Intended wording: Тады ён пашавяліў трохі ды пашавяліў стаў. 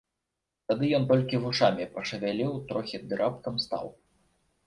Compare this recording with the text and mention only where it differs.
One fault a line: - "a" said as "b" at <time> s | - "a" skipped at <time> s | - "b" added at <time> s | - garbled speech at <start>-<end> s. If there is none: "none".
- "толькі вушамі" added at 1.1 s
- "пашавяліў" said as "раптам" at 3.2 s